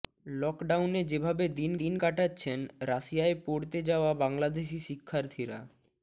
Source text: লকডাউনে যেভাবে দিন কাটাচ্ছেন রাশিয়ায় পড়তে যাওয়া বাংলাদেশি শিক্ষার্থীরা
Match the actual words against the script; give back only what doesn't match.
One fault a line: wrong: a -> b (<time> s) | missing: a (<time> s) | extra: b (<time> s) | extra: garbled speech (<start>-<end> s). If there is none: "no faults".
extra: দিন (1.8 s)